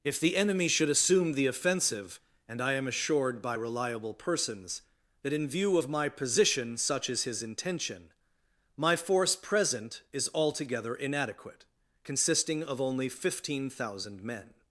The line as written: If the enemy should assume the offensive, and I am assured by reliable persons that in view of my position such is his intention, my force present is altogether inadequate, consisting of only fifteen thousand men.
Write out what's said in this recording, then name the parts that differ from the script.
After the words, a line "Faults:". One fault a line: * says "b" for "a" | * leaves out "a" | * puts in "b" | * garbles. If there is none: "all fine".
If the enemy should assume the offensive, and I am assured by reliable persons that in view of my position such is his intention, my force present is altogether inadequate, consisting of only fifteen thousand men.
Faults:
all fine